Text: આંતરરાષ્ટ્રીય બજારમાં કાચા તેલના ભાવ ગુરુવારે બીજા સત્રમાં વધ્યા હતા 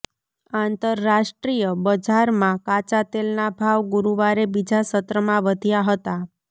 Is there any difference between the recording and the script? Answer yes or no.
no